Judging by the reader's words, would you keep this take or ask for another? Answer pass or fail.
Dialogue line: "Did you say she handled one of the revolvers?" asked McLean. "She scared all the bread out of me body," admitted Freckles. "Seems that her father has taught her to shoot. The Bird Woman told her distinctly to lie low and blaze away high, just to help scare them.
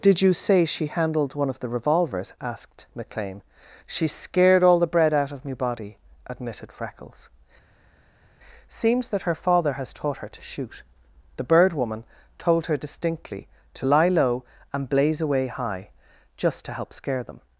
pass